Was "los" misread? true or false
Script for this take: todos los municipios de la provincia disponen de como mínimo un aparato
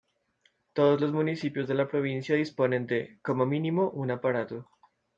false